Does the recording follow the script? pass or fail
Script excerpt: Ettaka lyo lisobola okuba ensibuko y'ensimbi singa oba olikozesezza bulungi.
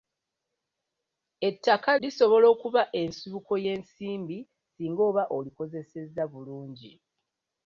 fail